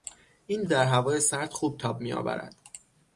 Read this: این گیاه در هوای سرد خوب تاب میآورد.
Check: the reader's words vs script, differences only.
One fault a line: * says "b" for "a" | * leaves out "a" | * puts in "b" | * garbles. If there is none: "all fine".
* leaves out "گیاه"